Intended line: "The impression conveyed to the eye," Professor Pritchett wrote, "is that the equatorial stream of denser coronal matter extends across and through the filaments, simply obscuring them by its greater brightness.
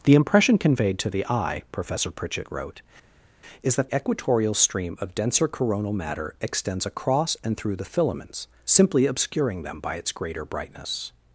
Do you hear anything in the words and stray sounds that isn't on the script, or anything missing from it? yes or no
yes